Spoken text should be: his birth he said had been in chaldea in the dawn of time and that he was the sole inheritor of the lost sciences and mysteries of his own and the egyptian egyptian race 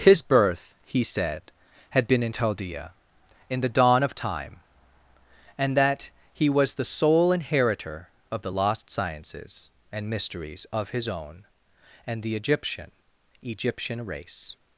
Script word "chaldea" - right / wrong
right